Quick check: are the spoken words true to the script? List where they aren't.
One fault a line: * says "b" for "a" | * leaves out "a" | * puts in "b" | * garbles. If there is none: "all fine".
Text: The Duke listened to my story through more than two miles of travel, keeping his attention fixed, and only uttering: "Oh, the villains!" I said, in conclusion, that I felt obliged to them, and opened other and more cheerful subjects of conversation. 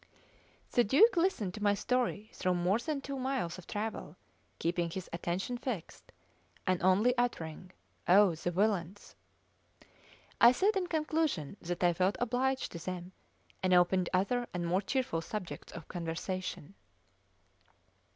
all fine